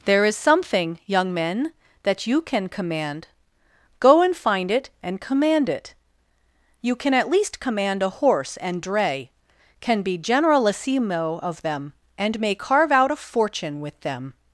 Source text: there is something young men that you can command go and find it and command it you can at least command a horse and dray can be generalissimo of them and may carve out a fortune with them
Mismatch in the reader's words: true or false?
false